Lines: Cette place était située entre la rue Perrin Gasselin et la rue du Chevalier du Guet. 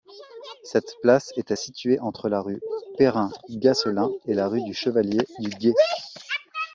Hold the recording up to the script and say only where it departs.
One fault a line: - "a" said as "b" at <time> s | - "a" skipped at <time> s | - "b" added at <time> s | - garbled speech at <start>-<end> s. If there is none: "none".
none